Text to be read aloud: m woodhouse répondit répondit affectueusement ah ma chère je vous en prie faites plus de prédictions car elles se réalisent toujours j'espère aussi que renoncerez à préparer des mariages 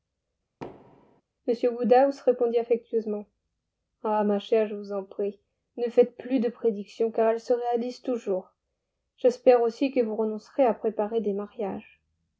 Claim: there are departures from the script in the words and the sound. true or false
true